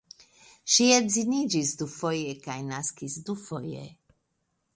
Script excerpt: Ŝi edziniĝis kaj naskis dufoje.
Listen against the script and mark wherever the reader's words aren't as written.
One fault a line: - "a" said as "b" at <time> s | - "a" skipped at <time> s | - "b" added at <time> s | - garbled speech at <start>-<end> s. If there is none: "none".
- "dufoje" added at 1.8 s